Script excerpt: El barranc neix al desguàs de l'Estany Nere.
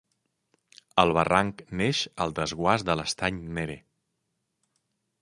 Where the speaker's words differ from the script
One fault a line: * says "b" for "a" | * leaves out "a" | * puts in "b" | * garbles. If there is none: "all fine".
all fine